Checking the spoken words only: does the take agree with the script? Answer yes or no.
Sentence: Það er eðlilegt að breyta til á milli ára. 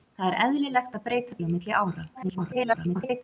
no